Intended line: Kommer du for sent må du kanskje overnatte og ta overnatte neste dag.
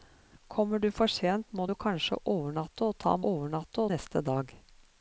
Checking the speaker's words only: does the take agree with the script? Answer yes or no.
yes